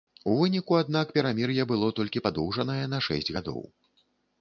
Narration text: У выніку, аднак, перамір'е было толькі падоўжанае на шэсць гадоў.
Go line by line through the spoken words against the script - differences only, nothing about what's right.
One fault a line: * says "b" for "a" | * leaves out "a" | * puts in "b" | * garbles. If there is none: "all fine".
all fine